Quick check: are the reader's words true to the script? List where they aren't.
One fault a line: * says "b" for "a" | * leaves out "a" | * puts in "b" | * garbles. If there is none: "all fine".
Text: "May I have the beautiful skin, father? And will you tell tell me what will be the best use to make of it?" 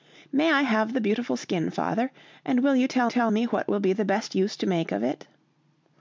all fine